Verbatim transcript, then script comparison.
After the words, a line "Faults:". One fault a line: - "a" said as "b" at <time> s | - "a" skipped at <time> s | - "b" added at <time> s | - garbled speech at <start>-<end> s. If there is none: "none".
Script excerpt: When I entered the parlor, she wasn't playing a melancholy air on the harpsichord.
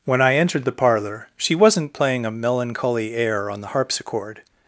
When I entered the parlor, she wasn't playing a melancholy air on the harpsichord.
Faults:
none